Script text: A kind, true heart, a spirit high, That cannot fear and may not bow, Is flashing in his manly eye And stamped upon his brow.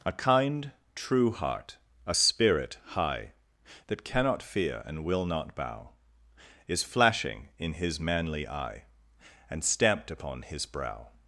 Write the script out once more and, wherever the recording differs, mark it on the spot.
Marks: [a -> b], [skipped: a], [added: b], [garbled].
A kind, true heart, a spirit high, That cannot fear and [may -> will] not bow, Is flashing in his manly eye And stamped upon his brow.